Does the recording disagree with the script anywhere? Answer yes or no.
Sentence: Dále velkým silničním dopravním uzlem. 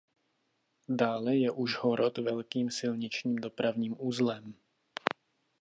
yes